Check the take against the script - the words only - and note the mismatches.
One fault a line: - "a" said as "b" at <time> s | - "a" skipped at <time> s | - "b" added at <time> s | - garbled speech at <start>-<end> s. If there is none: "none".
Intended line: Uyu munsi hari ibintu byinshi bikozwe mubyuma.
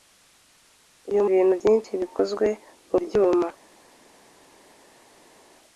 - "munsi hari" skipped at 1.2 s